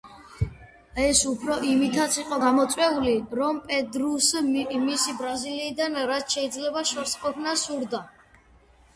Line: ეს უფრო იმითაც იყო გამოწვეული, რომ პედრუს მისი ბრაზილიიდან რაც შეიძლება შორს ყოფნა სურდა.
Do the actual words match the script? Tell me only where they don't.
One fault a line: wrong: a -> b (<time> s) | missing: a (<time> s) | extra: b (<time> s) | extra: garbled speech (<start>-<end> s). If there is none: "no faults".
no faults